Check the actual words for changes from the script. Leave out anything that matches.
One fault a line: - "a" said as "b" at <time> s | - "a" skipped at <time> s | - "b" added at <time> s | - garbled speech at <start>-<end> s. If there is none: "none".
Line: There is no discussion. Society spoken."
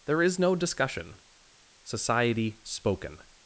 none